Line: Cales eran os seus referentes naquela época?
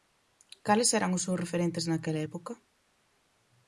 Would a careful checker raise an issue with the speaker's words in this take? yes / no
no